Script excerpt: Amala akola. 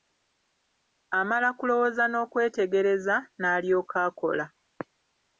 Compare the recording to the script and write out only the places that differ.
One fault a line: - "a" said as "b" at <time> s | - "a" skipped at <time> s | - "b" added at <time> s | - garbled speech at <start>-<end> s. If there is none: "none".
- "kulowooza n'okwetegereza n'alyoka" added at 1.6 s